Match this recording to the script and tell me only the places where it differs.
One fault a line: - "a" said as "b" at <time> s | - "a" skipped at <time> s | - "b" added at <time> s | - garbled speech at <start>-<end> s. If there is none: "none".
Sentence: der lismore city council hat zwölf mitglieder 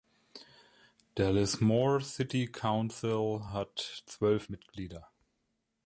none